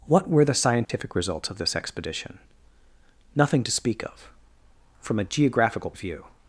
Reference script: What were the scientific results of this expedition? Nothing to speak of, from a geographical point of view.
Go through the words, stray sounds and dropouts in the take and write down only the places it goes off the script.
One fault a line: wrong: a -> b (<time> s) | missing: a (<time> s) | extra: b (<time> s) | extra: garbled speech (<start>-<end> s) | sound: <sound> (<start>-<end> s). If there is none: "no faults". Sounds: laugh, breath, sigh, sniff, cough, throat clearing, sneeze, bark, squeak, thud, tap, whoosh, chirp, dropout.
sound: dropout (0.8-0.9 s)
missing: point (5.9 s)